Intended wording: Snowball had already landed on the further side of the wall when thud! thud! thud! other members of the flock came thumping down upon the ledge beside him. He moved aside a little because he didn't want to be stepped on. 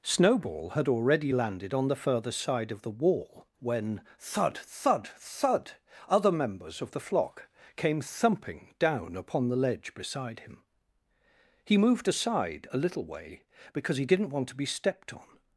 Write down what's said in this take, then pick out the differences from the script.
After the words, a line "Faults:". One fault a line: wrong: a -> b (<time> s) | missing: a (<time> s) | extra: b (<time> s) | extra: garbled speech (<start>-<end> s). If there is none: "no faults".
Snowball had already landed on the further side of the wall when thud! thud! thud! other members of the flock came thumping down upon the ledge beside him. He moved aside a little way, because he didn't want to be stepped on.
Faults:
extra: way (13.0 s)